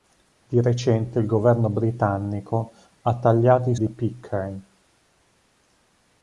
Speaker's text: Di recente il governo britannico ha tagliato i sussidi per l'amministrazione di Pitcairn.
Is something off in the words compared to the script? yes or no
yes